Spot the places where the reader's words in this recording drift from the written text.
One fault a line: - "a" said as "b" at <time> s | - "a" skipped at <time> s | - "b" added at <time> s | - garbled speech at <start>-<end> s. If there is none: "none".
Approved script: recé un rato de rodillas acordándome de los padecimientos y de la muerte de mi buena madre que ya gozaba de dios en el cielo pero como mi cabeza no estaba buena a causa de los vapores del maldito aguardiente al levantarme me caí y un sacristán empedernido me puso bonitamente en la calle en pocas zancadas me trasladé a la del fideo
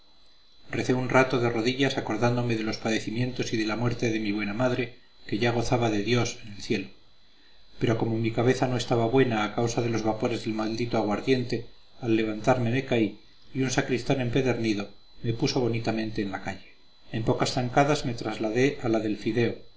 none